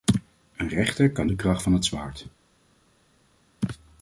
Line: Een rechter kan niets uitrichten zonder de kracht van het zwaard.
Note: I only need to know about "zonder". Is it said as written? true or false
false